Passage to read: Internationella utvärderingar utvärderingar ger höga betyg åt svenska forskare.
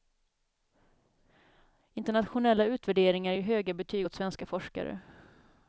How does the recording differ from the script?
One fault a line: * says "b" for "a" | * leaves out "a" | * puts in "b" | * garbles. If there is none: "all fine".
* leaves out "utvärderingar"